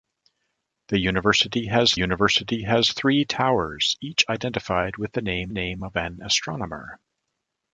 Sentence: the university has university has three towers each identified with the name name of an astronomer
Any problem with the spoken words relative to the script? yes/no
no